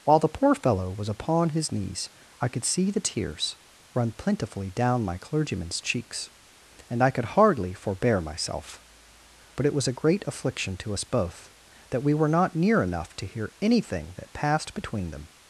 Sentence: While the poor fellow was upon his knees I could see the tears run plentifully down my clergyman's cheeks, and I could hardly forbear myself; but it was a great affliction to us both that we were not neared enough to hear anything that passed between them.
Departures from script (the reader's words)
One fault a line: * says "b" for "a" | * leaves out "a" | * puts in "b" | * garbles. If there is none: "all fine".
* says "near" for "neared"